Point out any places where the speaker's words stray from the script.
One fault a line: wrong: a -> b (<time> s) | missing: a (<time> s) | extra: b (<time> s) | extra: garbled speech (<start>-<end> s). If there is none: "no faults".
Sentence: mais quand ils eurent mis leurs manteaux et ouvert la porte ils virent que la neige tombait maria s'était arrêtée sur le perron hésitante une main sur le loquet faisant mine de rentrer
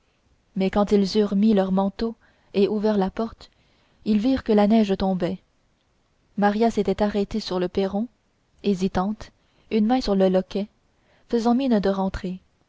no faults